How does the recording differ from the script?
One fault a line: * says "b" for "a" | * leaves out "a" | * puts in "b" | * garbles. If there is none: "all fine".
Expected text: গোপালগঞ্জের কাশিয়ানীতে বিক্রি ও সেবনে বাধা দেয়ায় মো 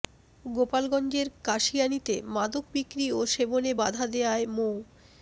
* puts in "মাদক"